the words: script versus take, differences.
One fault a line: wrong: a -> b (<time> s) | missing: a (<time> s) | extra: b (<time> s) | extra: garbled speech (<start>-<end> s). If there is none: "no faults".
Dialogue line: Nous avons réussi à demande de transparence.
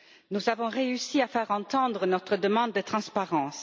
extra: faire entendre notre (1.3 s)